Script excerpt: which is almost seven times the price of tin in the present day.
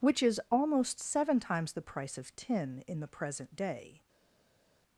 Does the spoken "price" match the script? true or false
true